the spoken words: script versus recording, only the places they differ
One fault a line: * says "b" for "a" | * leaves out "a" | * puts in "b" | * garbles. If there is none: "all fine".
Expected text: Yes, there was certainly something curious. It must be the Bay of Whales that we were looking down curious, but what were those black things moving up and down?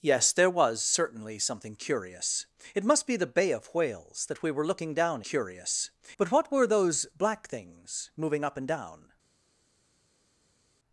all fine